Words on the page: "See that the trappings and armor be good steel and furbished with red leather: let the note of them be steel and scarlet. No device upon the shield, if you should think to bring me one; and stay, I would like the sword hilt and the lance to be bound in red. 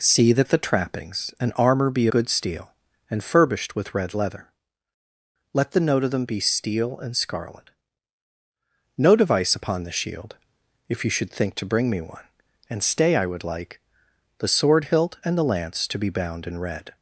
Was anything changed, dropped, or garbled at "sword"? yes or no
no